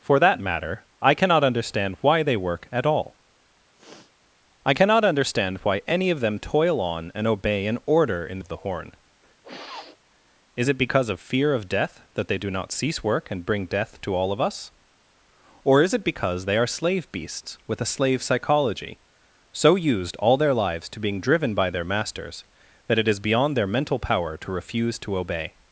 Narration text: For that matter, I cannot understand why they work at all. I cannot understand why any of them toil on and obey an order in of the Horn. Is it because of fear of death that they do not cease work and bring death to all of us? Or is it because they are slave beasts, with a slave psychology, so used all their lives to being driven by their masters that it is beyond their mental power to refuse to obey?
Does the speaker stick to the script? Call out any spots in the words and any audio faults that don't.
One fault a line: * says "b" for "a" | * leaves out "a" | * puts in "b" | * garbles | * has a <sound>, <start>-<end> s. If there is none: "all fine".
* has a sniff, 3.8-4.1 s
* has a sniff, 9.4-10.0 s